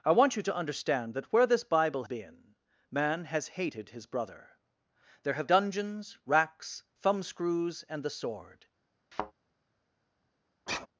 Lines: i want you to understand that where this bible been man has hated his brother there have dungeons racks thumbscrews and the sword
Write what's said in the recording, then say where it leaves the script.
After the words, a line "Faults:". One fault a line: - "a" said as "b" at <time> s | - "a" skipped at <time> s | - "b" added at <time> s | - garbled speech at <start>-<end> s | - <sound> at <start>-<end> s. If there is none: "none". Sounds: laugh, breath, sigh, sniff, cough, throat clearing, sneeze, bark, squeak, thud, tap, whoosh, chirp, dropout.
i want you to understand that where this bible been man has hated his brother there have dungeons racks thumbscrews and the sword
Faults:
- thud at 9.1-9.3 s
- sigh at 10.7-10.9 s